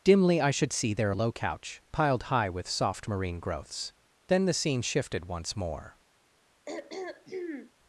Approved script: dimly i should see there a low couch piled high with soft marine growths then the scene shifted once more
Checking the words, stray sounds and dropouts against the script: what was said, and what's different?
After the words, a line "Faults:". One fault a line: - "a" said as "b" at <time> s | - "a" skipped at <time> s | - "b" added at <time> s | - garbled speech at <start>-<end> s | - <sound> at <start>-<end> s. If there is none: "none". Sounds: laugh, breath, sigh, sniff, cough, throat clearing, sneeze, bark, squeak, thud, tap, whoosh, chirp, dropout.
dimly i should see there a low couch piled high with soft marine growths then the scene shifted once more
Faults:
- throat clearing at 6.7-7.7 s